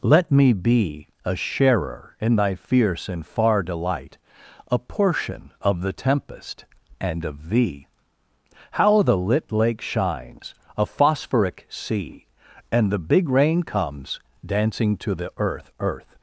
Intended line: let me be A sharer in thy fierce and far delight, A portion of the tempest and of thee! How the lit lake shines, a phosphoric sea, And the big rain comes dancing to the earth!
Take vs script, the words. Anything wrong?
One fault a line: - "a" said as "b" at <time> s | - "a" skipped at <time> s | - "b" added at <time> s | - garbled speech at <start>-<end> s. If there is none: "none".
- "earth" added at 15.8 s